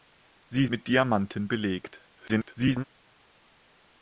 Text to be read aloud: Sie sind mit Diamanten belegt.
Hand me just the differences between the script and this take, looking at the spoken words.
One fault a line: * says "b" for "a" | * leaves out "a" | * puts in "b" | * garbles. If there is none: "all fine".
* leaves out "sind"
* garbles